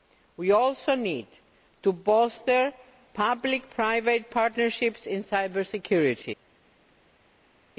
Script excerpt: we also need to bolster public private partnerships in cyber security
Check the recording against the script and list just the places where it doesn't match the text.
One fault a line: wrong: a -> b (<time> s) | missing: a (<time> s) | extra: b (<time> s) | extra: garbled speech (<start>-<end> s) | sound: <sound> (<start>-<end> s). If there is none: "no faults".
no faults